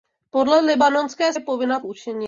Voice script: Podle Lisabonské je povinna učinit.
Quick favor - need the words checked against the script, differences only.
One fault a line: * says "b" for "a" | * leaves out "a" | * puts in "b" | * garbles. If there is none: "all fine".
all fine